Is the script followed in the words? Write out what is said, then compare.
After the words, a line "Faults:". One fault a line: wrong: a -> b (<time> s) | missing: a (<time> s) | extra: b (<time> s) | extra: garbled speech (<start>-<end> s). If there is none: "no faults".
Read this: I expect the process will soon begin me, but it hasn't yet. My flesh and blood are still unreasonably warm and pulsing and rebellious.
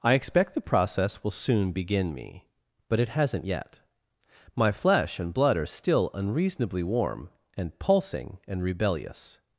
I expect the process will soon begin me, but it hasn't yet. My flesh and blood are still unreasonably warm and pulsing and rebellious.
Faults:
no faults